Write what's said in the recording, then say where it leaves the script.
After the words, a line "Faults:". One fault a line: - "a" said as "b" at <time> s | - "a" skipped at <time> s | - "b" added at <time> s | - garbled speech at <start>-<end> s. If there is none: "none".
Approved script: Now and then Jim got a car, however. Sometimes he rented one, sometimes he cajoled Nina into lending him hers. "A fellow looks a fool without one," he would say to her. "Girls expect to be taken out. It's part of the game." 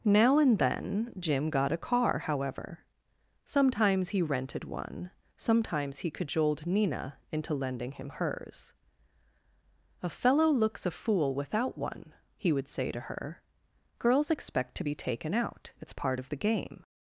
Now and then Jim got a car, however. Sometimes he rented one, sometimes he cajoled Nina into lending him hers. "A fellow looks a fool without one," he would say to her. "Girls expect to be taken out. It's part of the game."
Faults:
none